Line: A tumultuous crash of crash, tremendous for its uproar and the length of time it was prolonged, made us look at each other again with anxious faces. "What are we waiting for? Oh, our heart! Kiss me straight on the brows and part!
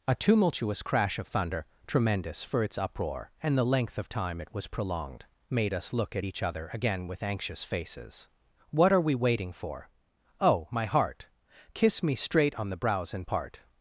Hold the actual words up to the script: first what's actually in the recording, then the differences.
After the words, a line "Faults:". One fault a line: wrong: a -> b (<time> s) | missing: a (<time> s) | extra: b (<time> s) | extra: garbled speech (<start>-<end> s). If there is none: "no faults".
A tumultuous crash of thunder, tremendous for its uproar and the length of time it was prolonged, made us look at each other again with anxious faces. "What are we waiting for? Oh, my heart! Kiss me straight on the brows and part!
Faults:
wrong: crash -> thunder (1.3 s)
wrong: our -> my (10.7 s)